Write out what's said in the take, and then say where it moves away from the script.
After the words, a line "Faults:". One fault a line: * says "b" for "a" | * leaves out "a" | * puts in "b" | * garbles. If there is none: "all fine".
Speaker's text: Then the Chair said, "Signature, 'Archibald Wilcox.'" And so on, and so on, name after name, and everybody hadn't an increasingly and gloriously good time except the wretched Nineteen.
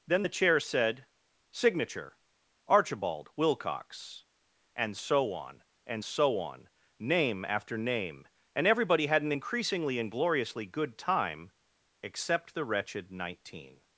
Then the Chair said, "Signature, 'Archibald Wilcox.'" And so on, and so on, name after name, and everybody had an increasingly and gloriously good time except the wretched Nineteen.
Faults:
* says "had" for "hadn't"